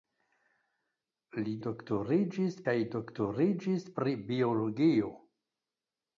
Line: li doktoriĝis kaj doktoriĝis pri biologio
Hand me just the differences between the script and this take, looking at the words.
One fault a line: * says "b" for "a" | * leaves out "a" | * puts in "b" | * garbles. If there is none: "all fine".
all fine